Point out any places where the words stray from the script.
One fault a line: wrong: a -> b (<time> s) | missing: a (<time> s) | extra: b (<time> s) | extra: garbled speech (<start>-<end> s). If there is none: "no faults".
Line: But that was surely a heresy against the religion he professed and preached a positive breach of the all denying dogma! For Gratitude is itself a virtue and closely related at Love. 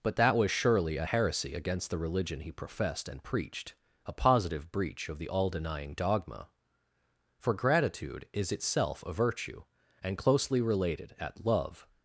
no faults